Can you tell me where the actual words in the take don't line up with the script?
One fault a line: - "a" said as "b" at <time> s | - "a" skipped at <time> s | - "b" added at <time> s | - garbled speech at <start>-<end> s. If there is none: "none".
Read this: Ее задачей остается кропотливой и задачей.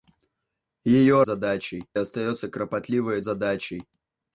none